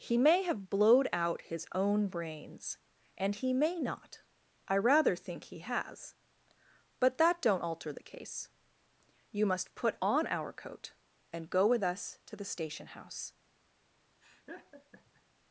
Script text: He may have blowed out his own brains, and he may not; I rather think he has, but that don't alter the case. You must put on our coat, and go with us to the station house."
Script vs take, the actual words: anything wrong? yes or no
no